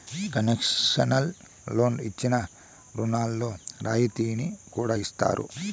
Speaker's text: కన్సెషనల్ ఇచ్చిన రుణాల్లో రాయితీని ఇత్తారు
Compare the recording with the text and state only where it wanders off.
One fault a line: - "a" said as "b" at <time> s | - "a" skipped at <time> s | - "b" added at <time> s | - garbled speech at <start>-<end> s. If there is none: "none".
- "లోన్లు" added at 1.7 s
- "కూడా" added at 4.7 s